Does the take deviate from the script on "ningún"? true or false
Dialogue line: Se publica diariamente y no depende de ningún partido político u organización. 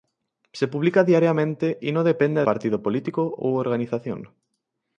true